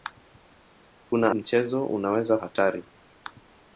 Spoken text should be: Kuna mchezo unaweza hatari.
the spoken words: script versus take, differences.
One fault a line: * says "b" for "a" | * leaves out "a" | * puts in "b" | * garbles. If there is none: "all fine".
all fine